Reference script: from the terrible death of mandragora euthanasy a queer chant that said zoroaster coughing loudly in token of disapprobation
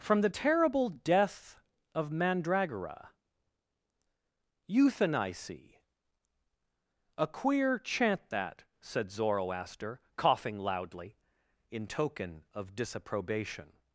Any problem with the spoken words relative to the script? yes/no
no